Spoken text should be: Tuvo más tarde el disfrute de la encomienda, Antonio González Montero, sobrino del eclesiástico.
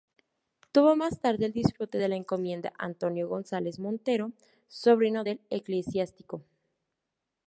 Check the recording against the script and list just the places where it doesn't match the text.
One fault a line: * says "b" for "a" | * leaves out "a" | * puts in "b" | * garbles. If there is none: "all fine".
all fine